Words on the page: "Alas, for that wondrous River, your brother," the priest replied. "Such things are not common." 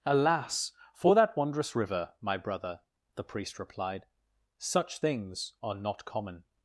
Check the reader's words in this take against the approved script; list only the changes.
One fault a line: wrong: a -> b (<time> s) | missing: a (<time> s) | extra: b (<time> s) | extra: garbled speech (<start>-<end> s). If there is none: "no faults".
wrong: your -> my (2.2 s)